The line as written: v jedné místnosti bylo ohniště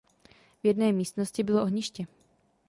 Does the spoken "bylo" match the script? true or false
true